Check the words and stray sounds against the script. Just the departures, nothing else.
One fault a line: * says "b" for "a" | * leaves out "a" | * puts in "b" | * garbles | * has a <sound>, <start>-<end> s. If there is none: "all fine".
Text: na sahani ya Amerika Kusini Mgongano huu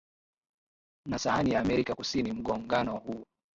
all fine